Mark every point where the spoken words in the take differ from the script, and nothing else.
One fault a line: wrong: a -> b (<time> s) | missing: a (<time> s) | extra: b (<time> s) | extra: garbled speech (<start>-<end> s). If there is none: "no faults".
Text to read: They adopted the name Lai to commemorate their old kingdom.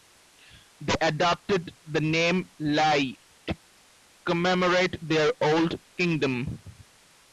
no faults